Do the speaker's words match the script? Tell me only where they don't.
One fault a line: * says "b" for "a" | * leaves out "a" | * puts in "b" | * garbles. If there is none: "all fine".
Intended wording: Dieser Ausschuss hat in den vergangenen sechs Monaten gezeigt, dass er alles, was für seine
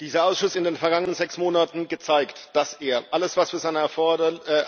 * leaves out "hat"